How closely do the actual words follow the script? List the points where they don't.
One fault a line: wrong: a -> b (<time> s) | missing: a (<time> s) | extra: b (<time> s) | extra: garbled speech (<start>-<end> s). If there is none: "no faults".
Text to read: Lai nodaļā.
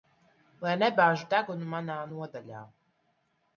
extra: nebāž degunu manā (0.8 s)